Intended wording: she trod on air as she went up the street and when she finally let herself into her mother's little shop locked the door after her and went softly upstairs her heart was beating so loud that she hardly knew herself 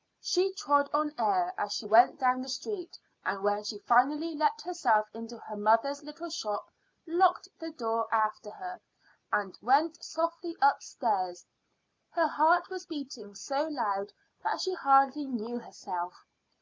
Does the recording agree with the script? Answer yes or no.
no